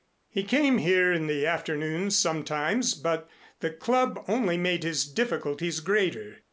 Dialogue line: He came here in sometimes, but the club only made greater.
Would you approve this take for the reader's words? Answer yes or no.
no